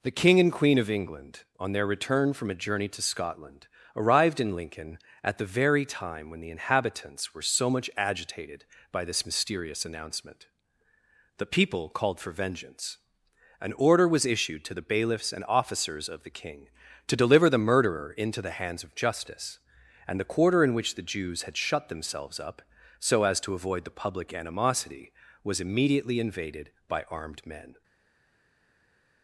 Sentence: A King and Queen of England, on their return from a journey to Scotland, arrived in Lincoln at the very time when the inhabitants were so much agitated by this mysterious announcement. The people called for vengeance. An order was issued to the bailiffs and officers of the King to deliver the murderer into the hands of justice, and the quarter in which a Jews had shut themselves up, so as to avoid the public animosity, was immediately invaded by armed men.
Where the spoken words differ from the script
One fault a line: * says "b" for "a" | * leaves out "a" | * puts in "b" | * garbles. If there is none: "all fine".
* says "The" for "A"
* says "the" for "a"